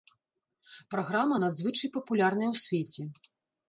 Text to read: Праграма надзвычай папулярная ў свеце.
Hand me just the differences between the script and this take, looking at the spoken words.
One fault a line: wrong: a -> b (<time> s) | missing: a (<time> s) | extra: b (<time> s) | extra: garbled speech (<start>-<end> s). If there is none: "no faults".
no faults